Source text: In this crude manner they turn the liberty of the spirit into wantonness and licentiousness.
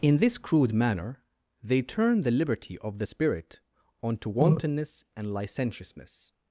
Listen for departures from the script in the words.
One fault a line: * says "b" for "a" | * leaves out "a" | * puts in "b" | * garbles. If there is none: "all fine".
* says "onto" for "into"